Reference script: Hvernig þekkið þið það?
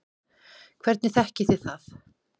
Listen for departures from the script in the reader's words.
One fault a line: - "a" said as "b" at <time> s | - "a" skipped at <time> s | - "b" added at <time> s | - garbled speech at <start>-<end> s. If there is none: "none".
none